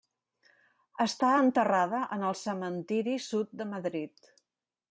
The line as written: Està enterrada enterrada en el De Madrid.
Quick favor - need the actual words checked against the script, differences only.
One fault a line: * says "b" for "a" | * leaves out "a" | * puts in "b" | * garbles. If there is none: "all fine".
* leaves out "enterrada"
* puts in "Cementiri Sud"